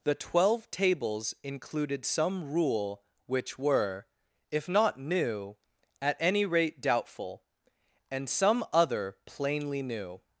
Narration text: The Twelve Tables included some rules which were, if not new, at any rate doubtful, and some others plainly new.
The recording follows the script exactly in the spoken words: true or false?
false